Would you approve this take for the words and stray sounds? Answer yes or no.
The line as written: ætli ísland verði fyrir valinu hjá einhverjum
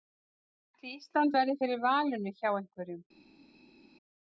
yes